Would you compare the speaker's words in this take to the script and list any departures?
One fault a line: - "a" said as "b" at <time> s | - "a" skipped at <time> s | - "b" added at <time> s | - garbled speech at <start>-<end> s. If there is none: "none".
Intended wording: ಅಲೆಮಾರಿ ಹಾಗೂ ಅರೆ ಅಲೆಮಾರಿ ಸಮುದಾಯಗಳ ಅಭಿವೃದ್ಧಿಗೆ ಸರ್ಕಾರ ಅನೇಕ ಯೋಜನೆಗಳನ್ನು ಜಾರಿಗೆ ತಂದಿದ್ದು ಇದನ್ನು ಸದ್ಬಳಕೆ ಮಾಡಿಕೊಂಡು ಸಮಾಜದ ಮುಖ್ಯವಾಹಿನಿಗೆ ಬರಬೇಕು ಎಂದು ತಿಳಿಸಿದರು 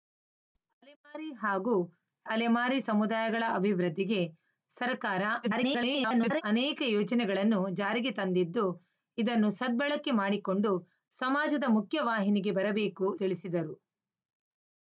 - "ಅರೆ" skipped at 1.7 s
- garbled speech at 5.4-6.4 s
- "ಎಂದು" skipped at 13.1 s